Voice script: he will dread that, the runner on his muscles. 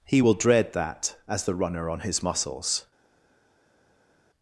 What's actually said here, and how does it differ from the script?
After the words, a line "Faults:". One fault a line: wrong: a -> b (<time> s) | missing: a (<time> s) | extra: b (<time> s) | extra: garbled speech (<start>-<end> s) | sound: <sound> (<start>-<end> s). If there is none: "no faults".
he will dread that, as the runner on his muscles.
Faults:
extra: as (1.3 s)